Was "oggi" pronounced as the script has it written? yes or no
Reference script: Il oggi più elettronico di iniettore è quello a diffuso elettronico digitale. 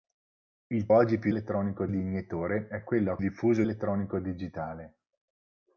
yes